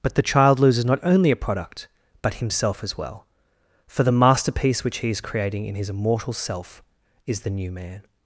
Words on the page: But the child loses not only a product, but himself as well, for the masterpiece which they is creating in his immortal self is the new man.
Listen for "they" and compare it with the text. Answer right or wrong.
wrong